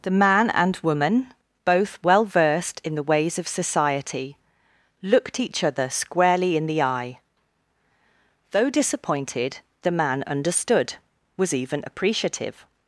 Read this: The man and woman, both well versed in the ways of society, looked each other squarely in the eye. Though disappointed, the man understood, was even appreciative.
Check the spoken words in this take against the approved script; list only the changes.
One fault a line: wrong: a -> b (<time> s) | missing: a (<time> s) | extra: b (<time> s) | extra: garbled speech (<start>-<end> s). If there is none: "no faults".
no faults